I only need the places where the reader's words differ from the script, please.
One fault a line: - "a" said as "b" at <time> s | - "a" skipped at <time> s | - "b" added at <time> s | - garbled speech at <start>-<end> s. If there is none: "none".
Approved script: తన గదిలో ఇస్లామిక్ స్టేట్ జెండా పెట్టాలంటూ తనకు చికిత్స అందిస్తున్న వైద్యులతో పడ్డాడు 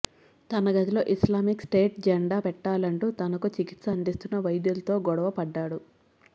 - "గొడవ" added at 5.1 s